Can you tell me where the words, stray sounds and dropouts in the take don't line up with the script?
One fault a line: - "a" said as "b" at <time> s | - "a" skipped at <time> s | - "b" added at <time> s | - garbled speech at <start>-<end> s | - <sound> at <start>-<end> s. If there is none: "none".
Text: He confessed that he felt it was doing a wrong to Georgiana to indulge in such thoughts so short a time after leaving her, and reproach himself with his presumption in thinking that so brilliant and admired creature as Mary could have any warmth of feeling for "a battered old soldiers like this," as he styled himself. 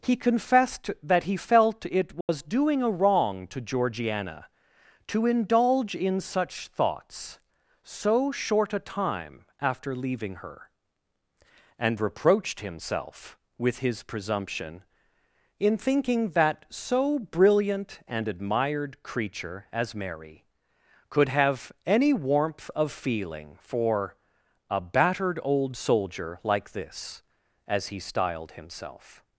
- dropout at 2.2-2.3 s
- "reproach" said as "reproached" at 12.0 s
- "soldiers" said as "soldier" at 25.8 s